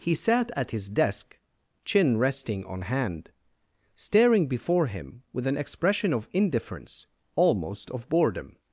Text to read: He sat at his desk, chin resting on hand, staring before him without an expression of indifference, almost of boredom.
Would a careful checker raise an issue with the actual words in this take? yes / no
yes